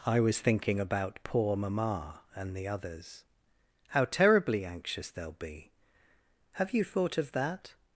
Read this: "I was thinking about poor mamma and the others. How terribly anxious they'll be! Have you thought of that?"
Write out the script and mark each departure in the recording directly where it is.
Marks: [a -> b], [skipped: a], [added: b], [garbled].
"I was thinking about poor mamma and the others. How terribly anxious they'll be! Have you thought of that?"